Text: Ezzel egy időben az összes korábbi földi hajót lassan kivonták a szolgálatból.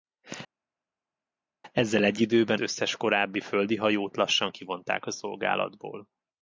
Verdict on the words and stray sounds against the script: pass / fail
fail